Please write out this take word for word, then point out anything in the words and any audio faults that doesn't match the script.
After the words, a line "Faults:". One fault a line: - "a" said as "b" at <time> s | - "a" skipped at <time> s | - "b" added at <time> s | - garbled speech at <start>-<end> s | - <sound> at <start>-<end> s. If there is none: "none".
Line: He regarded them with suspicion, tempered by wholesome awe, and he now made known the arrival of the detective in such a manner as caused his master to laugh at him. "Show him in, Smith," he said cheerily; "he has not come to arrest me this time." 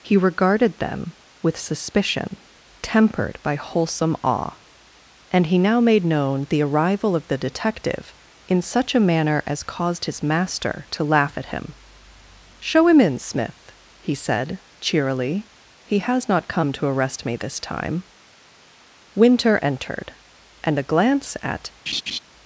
He regarded them with suspicion, tempered by wholesome awe, and he now made known the arrival of the detective in such a manner as caused his master to laugh at him. "Show him in, Smith," he said cheerily; "he has not come to arrest me this time." Winter entered, and a glance at
Faults:
- "Winter entered and a glance at" added at 19.1 s
- laugh at 21.9-22.2 s